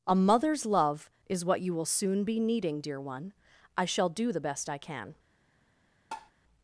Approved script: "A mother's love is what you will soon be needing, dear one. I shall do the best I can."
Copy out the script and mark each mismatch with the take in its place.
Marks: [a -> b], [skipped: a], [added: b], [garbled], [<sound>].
"A mother's love is what you will soon be needing, dear one. I shall do the best I can." [tap]